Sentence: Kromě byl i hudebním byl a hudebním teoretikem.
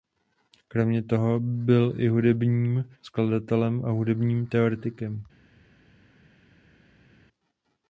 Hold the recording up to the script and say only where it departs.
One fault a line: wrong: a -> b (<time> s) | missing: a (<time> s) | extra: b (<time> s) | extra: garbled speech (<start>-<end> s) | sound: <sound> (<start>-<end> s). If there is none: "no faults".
extra: toho (1.0 s)
wrong: byl -> skladatelem (3.0 s)